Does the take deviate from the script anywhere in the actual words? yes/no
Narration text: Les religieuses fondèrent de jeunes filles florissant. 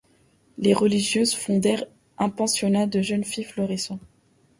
yes